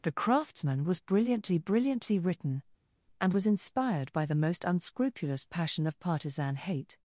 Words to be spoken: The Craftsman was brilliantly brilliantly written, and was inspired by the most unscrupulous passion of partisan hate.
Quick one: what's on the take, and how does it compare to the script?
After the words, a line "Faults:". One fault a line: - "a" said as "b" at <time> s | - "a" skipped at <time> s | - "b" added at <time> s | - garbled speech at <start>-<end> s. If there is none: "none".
The Craftsman was brilliantly brilliantly written, and was inspired by the most unscrupulous passion of partisan hate.
Faults:
none